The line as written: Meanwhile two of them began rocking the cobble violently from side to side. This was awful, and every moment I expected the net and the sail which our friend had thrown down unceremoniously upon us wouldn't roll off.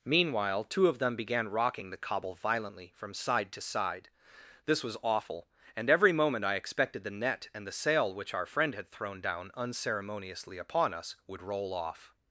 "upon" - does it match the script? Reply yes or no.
yes